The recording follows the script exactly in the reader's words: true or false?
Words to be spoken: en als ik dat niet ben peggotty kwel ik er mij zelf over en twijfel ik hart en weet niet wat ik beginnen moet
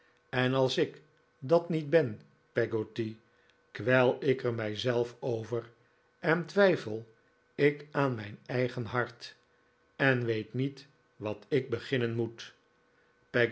false